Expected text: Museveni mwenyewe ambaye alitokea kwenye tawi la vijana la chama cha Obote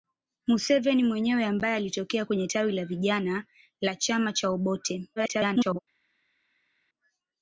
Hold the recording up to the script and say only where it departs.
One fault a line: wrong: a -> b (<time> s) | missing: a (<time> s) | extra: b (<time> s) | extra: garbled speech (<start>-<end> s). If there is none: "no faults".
extra: garbled speech (5.2-5.8 s)